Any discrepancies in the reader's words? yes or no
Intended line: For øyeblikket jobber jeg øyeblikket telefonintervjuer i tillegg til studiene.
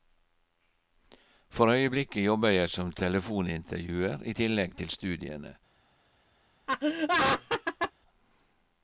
yes